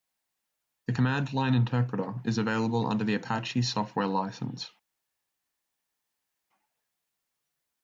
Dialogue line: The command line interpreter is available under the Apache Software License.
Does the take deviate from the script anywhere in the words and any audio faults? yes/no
no